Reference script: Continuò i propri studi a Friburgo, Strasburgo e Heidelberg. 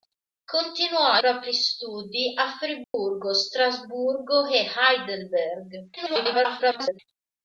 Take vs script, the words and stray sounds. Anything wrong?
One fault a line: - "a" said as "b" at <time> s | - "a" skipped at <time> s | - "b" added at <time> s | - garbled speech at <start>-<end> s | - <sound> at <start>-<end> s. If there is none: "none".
- "i" skipped at 1.2 s
- dropout at 2.8-2.9 s
- garbled speech at 6.0-7.0 s